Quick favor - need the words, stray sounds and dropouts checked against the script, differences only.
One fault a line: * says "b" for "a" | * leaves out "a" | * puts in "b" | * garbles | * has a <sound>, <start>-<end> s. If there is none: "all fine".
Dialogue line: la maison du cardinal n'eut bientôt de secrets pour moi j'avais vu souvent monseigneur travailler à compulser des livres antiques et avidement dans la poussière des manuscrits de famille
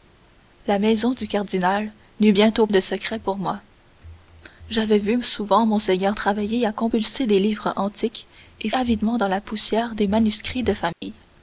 * has a dropout, 10.9-11.0 s